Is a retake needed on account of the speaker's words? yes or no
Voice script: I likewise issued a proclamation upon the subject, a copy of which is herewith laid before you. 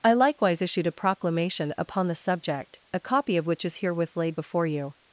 no